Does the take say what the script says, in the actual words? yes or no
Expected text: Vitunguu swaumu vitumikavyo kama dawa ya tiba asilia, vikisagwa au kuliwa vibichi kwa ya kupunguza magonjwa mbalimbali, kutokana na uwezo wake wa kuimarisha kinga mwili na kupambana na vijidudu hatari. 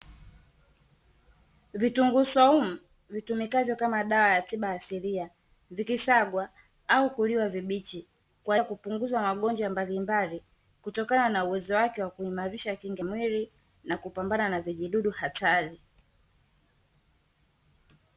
yes